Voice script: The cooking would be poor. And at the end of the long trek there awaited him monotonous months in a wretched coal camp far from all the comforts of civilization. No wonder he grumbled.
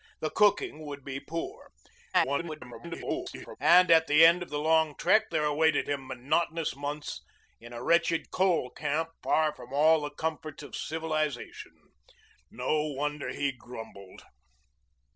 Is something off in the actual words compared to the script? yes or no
yes